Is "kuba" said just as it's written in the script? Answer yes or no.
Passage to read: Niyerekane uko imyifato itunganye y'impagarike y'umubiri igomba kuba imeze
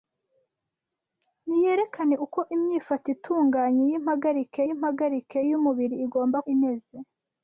no